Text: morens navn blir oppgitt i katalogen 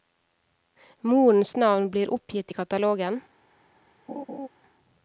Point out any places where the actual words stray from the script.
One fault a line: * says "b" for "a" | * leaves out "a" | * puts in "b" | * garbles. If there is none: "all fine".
all fine